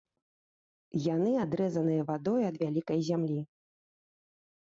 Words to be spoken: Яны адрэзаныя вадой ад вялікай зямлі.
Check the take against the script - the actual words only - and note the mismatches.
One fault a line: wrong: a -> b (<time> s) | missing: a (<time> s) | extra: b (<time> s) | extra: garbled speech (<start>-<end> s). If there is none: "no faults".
no faults